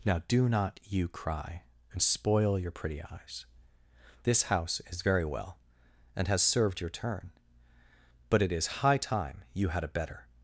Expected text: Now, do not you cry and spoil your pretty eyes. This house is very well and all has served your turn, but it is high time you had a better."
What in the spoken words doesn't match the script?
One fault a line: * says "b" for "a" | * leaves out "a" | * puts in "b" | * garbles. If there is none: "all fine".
* leaves out "all"